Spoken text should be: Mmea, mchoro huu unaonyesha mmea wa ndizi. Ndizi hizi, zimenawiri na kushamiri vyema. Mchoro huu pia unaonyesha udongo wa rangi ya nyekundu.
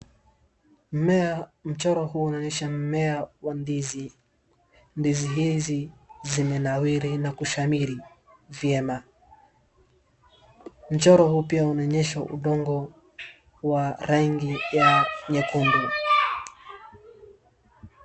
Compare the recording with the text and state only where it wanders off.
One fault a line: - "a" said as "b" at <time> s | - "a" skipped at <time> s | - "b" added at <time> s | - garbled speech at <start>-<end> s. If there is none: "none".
none